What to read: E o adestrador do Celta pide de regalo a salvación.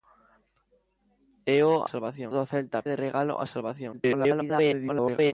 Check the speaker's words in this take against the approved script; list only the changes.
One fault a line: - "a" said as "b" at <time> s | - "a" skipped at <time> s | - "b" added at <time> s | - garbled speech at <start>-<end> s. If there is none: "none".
- "adestrador" said as "salvación" at 1.8 s
- "pide" skipped at 2.8 s
- garbled speech at 3.9-5.3 s